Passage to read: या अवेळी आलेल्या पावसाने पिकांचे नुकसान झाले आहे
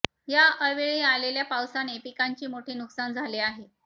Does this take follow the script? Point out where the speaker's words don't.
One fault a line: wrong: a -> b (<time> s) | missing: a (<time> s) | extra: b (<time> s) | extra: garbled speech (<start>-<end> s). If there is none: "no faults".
extra: मोठे (2.5 s)